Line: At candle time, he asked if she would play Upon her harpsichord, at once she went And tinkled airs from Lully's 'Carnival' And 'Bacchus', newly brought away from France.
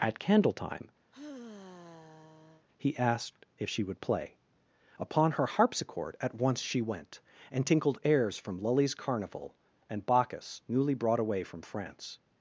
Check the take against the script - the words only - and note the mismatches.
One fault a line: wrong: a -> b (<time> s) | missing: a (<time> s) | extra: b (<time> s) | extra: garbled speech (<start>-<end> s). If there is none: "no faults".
no faults